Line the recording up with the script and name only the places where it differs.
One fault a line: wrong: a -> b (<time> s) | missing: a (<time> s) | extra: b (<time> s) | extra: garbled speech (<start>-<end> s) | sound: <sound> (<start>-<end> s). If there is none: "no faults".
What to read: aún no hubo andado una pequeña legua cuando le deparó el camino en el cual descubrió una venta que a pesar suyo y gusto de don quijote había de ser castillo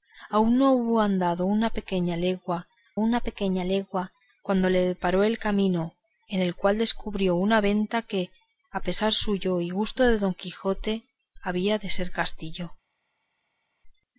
extra: una pequeña legua (3.0 s)